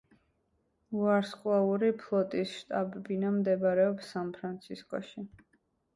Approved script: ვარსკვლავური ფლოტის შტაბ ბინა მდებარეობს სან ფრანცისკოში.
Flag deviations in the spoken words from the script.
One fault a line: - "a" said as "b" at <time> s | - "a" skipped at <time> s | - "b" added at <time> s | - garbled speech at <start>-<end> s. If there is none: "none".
none